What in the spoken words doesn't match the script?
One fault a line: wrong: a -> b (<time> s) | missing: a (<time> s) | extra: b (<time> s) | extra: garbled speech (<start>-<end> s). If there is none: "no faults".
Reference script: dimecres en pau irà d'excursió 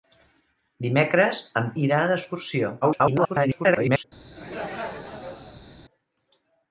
missing: pau (1.7 s)
extra: garbled speech (2.8-4.0 s)